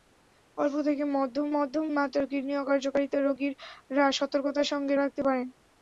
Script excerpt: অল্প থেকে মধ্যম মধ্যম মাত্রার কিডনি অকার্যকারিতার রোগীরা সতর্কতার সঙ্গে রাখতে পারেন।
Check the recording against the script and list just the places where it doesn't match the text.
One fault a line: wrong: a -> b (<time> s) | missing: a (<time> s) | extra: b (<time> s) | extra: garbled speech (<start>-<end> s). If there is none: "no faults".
no faults